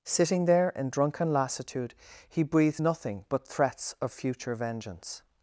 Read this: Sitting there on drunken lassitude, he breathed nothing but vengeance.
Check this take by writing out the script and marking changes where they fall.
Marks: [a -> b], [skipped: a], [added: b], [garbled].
Sitting there [on -> in] drunken lassitude, he breathed nothing but [added: threats of future] vengeance.